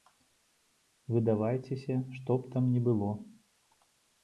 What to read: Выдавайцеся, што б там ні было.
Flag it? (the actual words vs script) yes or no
no